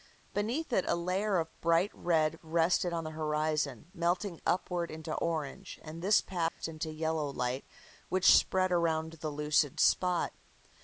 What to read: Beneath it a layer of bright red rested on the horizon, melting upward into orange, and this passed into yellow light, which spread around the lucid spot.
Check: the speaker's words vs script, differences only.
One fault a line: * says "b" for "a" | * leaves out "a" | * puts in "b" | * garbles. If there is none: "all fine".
all fine